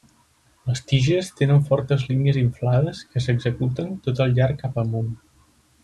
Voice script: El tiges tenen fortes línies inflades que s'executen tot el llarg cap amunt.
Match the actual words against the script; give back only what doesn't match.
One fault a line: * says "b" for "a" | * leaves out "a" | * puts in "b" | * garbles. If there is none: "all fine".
* says "Les" for "El"